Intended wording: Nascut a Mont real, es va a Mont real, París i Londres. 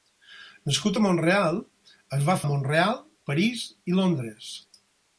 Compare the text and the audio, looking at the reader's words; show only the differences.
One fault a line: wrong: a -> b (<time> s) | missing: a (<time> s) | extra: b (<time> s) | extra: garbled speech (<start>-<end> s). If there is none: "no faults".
no faults